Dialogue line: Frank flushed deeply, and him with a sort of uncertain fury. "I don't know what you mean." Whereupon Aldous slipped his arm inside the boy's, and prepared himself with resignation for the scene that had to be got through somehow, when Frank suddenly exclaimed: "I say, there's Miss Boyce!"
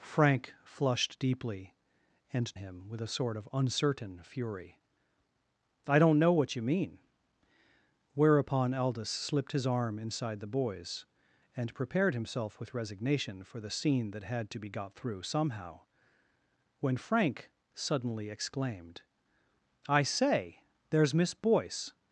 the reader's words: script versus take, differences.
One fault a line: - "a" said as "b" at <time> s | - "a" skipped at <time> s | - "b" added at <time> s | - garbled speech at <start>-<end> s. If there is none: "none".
none